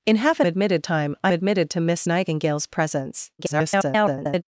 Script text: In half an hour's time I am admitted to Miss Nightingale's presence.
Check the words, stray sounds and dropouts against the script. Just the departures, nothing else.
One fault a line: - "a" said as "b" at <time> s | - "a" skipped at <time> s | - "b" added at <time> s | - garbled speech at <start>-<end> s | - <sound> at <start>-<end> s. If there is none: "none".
- "hour's" said as "admitted" at 0.4 s
- "am" skipped at 1.3 s
- garbled speech at 3.4-4.4 s